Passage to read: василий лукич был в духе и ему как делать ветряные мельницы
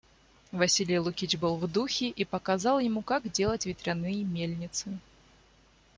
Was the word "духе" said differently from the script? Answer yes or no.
no